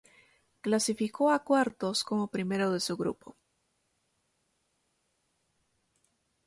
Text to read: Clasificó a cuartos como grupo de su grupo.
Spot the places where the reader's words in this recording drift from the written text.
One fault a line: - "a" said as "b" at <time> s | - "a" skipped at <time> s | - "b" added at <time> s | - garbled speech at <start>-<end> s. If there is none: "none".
- "grupo" said as "primero" at 2.3 s